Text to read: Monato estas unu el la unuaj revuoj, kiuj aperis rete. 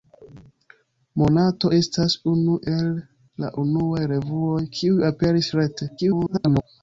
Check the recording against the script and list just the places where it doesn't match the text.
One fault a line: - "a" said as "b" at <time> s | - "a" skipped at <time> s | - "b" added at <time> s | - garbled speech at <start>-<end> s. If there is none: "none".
- garbled speech at 6.0-6.6 s